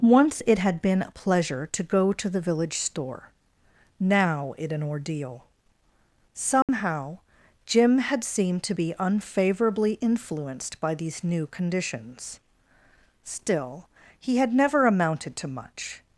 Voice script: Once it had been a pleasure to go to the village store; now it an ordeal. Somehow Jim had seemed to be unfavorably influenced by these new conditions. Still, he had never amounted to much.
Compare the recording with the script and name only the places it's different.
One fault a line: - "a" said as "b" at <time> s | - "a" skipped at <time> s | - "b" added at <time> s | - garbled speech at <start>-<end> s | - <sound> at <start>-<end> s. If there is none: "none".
- dropout at 6.6-6.7 s